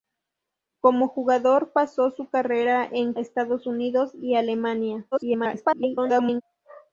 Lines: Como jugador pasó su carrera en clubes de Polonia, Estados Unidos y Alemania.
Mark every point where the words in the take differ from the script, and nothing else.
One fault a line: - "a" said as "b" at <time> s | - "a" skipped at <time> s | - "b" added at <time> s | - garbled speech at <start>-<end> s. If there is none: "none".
- "clubes de Polonia" skipped at 3.1 s
- garbled speech at 5.1-6.4 s